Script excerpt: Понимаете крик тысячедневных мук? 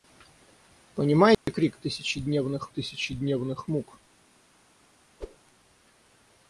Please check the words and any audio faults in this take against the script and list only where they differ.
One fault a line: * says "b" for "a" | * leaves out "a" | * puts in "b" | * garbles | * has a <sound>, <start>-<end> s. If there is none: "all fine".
* has a dropout, 1.3-1.5 s
* puts in "тысячедневных"
* has a whoosh, 5.2-5.4 s